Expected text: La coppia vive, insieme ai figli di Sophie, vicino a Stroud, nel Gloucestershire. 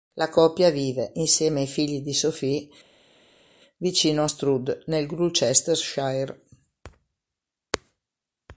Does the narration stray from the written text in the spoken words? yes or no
no